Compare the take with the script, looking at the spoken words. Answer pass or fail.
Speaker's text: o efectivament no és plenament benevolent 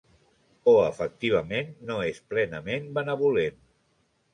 pass